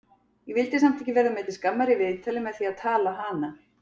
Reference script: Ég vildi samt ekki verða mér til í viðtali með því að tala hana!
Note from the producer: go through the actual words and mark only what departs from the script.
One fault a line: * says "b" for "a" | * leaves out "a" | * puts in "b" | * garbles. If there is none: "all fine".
* puts in "skammar"